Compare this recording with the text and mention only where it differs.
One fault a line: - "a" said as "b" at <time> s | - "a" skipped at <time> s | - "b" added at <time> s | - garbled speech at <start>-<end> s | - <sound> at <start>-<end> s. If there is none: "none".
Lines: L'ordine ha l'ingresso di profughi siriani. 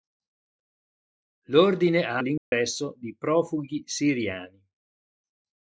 - dropout at 2.4-2.5 s